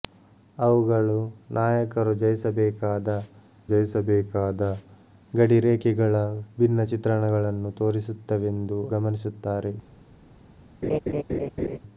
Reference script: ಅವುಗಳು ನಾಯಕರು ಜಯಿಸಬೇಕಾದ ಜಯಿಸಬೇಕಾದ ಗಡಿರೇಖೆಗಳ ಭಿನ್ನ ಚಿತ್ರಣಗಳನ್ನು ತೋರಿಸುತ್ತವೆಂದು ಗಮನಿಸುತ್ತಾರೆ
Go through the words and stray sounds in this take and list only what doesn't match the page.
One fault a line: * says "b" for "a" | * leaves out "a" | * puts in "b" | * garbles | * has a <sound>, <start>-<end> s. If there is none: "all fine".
* has a laugh, 10.8-11.8 s